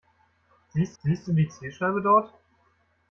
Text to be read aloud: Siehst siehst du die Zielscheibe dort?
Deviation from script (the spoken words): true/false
false